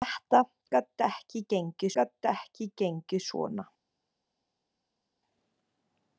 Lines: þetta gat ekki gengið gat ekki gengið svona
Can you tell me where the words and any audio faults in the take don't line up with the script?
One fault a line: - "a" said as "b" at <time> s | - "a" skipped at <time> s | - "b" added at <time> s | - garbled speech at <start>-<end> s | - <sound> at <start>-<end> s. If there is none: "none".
none